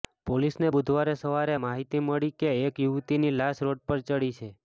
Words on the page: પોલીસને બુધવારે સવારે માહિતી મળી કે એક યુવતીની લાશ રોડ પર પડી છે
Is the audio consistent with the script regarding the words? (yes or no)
yes